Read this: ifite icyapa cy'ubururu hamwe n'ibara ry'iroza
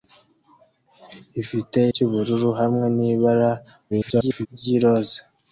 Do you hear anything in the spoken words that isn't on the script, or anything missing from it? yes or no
yes